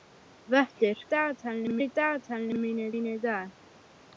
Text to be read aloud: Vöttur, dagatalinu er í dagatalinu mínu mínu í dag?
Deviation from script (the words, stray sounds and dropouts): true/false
false